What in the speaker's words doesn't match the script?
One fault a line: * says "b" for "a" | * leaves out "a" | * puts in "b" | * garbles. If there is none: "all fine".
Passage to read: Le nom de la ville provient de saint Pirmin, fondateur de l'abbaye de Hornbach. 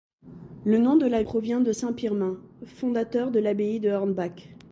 * leaves out "ville"